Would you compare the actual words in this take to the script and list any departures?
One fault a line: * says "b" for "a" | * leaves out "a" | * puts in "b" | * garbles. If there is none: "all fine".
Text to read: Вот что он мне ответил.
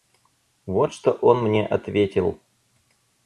all fine